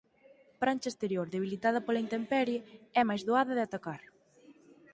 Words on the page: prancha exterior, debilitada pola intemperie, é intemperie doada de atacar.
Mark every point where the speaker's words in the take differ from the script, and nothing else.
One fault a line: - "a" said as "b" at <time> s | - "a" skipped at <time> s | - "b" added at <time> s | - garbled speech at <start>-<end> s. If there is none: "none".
- "intemperie" said as "máis" at 3.1 s